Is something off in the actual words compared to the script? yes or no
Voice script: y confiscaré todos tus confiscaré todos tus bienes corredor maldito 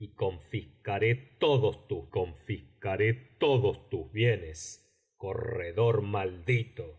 no